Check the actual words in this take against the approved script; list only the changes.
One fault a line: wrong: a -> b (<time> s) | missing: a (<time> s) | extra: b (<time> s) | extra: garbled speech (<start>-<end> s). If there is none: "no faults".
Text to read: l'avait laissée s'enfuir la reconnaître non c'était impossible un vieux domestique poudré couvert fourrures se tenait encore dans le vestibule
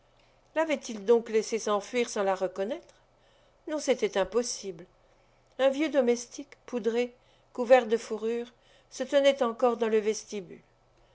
extra: il donc (0.9 s)
extra: sans (2.1 s)
extra: de (7.9 s)